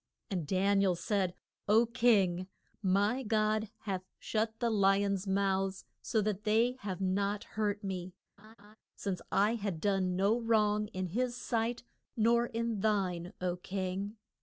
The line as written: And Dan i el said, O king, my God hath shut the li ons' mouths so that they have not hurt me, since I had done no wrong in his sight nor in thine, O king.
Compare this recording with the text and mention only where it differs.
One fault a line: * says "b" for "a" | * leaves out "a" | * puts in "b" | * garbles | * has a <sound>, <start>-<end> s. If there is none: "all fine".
* has a laugh, 8.4-8.8 s